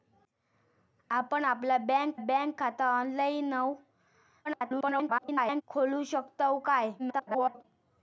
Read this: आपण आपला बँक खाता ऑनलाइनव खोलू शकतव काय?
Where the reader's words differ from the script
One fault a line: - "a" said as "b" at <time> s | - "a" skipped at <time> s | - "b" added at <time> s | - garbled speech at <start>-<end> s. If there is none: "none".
- "बँक" added at 2.2 s
- garbled speech at 4.4-5.6 s
- garbled speech at 7.0-7.6 s